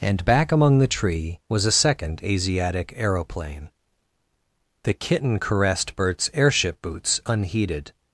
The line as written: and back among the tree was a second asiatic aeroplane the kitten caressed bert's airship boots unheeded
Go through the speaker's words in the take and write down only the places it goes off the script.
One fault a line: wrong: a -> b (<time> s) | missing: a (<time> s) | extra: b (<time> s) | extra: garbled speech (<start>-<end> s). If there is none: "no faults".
no faults